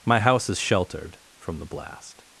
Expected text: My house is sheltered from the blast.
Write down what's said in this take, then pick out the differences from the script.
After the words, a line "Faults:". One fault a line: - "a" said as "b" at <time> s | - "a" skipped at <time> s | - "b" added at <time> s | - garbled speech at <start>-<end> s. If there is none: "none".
My house is sheltered from the blast.
Faults:
none